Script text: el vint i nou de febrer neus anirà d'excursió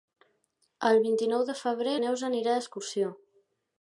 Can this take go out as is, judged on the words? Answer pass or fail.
pass